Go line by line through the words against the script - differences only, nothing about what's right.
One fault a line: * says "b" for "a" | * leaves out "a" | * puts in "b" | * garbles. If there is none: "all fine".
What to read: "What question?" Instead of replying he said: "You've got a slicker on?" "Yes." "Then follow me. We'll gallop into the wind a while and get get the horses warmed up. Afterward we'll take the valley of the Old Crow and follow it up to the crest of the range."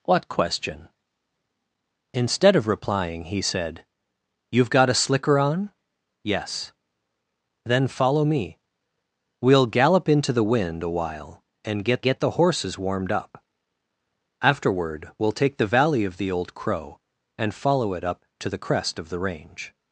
all fine